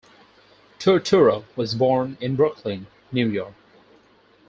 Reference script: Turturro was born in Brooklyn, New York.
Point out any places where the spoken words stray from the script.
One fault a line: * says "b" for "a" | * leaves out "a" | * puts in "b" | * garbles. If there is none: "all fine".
all fine